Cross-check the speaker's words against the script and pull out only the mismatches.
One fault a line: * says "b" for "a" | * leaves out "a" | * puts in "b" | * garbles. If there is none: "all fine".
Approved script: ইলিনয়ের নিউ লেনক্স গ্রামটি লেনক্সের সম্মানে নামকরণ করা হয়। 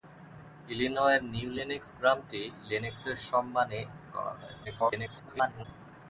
* leaves out "নামকরণ"
* garbles